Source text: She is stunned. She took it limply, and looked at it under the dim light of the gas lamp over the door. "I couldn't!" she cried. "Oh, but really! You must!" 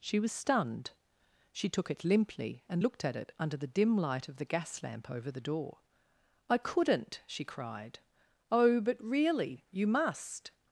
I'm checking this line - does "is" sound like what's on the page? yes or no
no